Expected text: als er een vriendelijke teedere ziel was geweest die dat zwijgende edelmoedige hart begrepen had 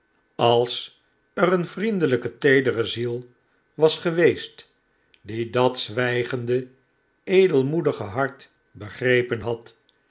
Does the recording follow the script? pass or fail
pass